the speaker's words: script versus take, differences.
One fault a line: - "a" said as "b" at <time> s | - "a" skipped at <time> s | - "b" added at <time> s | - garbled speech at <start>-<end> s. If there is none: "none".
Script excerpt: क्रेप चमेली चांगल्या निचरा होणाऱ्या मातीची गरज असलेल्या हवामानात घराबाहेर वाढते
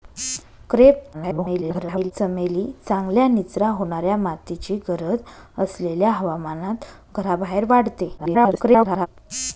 - garbled speech at 1.1-2.1 s
- garbled speech at 8.2-9.1 s